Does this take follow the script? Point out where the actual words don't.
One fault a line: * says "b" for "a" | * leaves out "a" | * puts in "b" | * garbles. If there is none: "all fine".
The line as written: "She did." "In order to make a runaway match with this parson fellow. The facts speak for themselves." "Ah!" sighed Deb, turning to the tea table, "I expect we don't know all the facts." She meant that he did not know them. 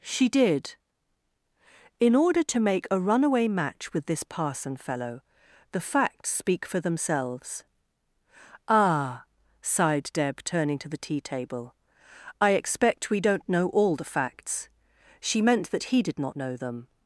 all fine